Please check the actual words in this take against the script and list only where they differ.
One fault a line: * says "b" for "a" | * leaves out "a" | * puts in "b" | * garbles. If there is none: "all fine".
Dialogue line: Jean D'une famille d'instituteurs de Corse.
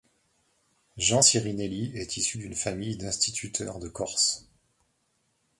* puts in "Sirinelli est issu"